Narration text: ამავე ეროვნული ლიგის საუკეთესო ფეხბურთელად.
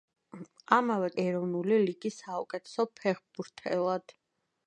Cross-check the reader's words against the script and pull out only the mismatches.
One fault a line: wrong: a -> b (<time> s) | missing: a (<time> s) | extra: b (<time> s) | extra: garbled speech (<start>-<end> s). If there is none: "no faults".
no faults